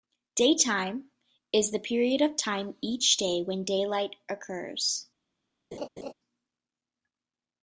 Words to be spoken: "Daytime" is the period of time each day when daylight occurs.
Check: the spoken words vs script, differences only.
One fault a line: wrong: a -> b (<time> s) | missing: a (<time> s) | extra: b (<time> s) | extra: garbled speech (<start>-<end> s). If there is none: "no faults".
no faults